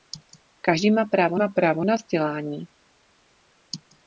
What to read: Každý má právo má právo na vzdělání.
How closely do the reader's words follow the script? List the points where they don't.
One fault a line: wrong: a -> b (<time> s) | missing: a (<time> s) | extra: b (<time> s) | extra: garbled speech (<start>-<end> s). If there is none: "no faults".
no faults